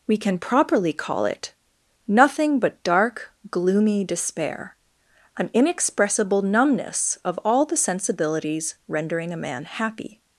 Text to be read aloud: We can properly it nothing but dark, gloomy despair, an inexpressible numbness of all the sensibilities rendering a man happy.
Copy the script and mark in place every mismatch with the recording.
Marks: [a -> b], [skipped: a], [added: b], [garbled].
We can properly [added: call] it nothing but dark, gloomy despair, an inexpressible numbness of all the sensibilities rendering a man happy.